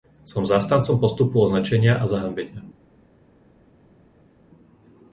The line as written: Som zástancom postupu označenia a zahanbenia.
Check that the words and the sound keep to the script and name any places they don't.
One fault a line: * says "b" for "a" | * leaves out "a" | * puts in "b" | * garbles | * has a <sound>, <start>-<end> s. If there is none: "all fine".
all fine